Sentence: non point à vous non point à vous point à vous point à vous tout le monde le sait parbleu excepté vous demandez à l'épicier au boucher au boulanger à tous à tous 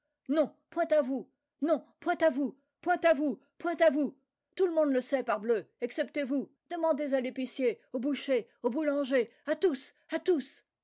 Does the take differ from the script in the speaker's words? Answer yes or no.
no